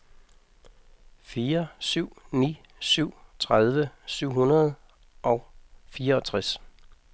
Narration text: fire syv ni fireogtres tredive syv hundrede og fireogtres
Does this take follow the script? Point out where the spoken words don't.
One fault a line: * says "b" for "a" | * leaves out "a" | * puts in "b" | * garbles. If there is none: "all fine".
* says "syv" for "fireogtres"